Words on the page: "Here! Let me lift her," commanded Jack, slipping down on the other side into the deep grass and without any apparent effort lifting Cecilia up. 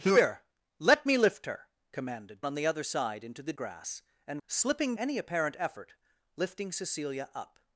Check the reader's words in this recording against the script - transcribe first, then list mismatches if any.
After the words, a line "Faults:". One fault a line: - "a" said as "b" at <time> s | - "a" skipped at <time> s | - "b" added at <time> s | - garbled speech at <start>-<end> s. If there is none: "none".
"Here! Let me lift her," commanded On the other side into the grass and slipping any apparent effort lifting Cecilia up.
Faults:
- "Jack slipping down" skipped at 2.4 s
- "deep" skipped at 3.5 s
- "without" said as "slipping" at 4.5 s